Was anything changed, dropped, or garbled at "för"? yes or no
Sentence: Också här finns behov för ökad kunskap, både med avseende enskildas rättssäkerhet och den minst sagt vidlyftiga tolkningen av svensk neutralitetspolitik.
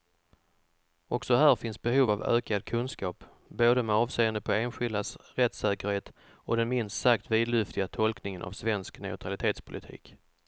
yes